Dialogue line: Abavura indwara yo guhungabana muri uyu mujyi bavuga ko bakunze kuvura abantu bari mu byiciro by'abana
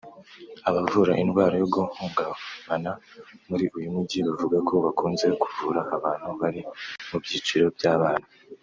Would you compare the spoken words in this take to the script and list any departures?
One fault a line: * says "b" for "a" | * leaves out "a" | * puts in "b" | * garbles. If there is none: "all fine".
all fine